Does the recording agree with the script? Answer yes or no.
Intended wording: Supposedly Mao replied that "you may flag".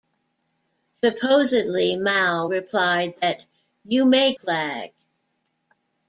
yes